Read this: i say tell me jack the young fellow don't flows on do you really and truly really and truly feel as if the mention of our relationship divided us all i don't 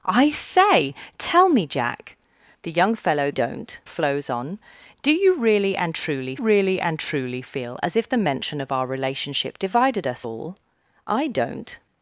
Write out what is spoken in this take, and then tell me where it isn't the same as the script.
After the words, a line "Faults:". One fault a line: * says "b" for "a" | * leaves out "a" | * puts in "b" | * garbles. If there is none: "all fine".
i say tell me jack the young fellow don't flows on do you really and truly really and truly feel as if the mention of our relationship divided us all i don't
Faults:
all fine